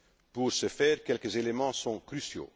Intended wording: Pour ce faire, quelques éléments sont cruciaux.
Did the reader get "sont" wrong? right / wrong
right